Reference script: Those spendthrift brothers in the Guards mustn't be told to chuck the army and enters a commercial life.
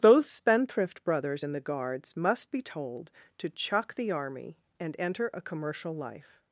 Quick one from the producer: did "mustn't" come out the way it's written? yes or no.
no